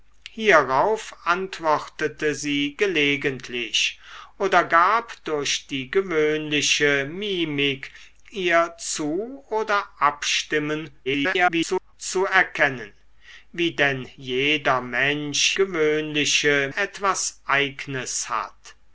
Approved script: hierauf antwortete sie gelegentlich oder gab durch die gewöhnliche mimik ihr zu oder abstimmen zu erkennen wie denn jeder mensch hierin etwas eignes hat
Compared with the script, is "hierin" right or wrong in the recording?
wrong